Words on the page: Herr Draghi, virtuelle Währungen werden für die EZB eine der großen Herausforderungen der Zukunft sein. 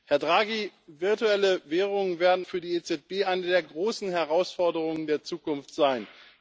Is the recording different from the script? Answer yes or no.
no